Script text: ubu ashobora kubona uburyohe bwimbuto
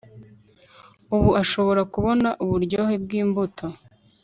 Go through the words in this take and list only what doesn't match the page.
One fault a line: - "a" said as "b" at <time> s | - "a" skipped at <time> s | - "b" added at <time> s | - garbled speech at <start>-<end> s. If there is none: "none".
none